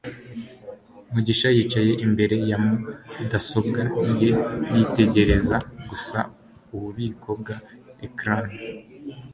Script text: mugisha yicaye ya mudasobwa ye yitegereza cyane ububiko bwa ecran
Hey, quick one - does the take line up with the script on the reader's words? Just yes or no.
no